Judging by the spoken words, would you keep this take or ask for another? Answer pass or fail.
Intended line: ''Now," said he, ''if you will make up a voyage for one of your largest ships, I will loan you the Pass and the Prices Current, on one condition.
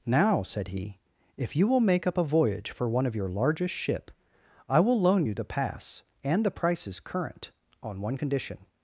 fail